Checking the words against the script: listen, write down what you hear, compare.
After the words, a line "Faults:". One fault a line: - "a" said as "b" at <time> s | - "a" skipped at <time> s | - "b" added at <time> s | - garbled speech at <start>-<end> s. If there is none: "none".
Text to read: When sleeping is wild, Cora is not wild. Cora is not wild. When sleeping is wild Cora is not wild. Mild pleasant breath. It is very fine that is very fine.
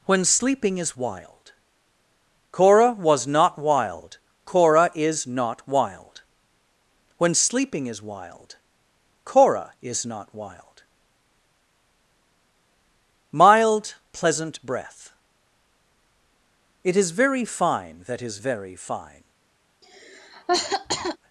When sleeping is wild, Cora was not wild. Cora is not wild. When sleeping is wild Cora is not wild. Mild pleasant breath. It is very fine that is very fine.
Faults:
- "is" said as "was" at 2.9 s